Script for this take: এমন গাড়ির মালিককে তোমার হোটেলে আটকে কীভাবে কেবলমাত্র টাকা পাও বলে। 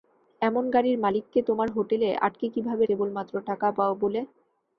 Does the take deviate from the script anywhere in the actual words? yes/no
no